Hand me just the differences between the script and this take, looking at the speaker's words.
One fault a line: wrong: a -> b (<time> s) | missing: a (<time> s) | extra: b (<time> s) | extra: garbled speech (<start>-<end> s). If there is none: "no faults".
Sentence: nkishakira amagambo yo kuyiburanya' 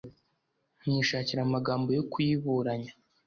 no faults